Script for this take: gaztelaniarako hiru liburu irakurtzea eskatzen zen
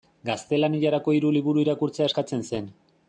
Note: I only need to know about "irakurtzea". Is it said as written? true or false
true